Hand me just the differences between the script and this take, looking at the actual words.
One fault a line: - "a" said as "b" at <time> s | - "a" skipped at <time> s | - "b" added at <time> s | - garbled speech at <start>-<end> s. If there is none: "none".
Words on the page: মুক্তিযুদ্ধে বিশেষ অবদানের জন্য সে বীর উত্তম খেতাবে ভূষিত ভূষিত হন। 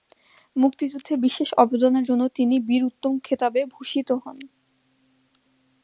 - "সে" said as "তিনি" at 2.3 s
- "ভূষিত" skipped at 4.1 s